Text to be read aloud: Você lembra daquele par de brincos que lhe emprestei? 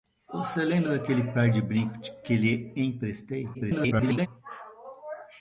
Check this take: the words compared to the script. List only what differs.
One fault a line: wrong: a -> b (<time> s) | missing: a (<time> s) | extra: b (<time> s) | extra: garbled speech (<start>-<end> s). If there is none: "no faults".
extra: garbled speech (3.5-4.3 s)